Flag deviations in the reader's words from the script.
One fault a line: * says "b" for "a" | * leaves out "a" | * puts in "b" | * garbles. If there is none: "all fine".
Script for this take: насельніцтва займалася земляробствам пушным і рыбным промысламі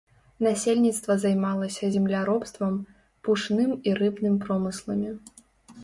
all fine